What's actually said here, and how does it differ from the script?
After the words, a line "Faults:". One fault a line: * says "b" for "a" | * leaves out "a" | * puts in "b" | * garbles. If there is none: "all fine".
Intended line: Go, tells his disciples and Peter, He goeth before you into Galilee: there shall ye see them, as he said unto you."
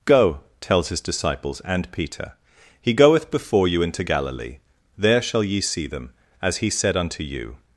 Go, tells his disciples and Peter, He goeth before you into Galilee: there shall ye see them, as he said unto you."
Faults:
all fine